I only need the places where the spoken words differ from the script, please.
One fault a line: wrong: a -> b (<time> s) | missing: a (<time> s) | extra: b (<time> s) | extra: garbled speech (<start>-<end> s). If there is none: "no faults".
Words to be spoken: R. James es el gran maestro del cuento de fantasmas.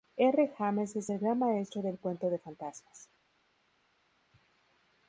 no faults